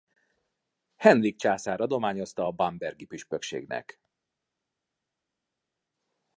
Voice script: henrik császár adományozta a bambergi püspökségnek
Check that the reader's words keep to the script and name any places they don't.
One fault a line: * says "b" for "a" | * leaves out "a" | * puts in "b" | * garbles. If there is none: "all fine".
all fine